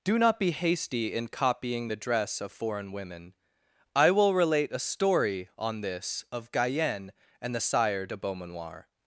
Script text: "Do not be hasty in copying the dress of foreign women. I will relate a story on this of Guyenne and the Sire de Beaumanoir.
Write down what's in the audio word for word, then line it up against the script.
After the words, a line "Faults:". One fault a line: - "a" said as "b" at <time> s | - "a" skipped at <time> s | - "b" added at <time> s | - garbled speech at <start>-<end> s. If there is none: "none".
"Do not be hasty in copying the dress of foreign women. I will relate a story on this of Guyenne and the Sire de Beaumanoir.
Faults:
none